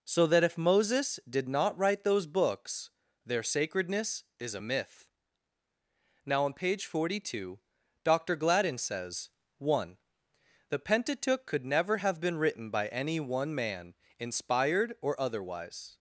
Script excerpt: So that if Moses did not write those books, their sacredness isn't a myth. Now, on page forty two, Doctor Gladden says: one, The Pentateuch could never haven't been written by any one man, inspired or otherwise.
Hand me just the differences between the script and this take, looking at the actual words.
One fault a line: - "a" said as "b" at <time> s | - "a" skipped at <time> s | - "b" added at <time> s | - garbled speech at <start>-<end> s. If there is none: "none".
- "isn't" said as "is" at 4.4 s
- "haven't" said as "have" at 12.0 s